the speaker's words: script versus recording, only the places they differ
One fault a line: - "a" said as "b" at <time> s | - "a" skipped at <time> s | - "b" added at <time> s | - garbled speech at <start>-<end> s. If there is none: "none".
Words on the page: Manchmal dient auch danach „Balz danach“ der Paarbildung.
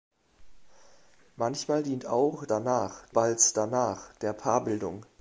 none